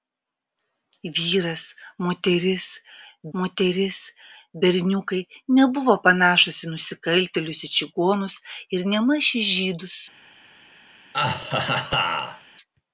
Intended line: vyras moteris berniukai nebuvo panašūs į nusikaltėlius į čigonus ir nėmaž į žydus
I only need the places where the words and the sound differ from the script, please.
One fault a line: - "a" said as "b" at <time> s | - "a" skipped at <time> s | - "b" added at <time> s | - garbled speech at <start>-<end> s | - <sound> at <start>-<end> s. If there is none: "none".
- "moteris" added at 3.4 s
- laugh at 11.1-12.4 s